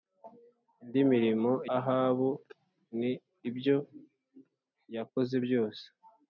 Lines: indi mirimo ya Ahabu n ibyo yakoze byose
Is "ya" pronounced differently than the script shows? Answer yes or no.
yes